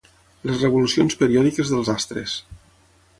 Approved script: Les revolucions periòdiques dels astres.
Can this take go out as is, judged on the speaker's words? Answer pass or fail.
pass